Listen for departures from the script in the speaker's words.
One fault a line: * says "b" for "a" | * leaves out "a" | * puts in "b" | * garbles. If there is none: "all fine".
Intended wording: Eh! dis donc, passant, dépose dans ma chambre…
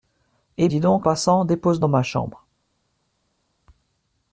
all fine